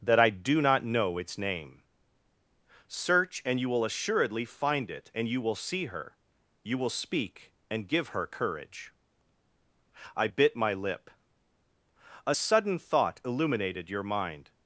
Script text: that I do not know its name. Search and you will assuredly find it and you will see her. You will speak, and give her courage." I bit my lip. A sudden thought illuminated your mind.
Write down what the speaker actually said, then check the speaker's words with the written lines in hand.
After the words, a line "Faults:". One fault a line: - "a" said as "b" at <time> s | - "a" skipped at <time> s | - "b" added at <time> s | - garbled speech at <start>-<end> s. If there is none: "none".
that I do not know its name. Search and you will assuredly find it and you will see her. You will speak, and give her courage." I bit my lip. A sudden thought illuminated your mind.
Faults:
none